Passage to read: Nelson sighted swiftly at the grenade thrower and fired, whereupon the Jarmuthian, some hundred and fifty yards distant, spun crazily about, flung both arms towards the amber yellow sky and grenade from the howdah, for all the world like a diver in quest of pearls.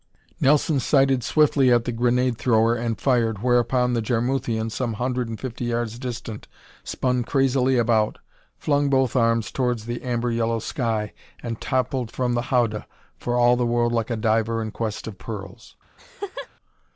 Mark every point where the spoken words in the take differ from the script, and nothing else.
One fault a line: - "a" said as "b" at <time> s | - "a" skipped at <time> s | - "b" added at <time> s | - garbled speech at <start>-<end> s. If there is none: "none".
- "grenade" said as "toppled" at 11.6 s